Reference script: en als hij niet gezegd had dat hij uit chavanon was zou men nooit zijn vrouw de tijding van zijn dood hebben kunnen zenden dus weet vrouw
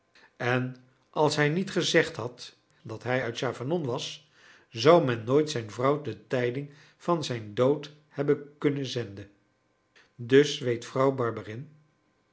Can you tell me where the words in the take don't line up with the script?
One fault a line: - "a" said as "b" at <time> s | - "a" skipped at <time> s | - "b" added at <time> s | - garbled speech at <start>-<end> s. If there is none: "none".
none